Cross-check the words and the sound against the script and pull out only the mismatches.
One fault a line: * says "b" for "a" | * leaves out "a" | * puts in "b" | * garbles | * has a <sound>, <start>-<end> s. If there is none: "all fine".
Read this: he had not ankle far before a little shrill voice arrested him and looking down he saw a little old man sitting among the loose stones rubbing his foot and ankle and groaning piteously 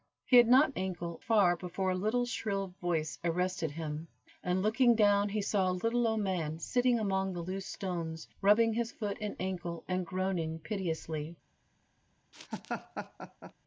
* has a laugh, 12.3-13.5 s